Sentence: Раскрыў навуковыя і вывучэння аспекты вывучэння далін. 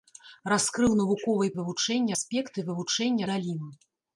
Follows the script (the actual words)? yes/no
yes